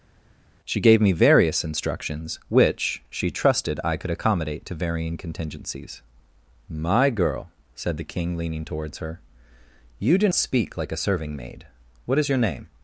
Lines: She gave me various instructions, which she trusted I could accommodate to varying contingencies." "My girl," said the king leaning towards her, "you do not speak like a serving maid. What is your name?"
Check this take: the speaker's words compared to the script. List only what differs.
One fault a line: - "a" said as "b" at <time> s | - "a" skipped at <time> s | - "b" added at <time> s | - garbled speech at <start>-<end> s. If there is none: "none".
- "not" skipped at 10.3 s